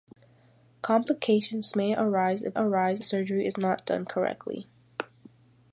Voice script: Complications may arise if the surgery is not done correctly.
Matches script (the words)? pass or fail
fail